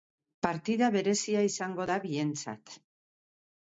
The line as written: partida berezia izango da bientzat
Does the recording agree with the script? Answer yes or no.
yes